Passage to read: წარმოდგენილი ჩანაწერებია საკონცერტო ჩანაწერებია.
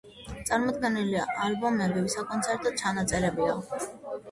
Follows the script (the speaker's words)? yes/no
no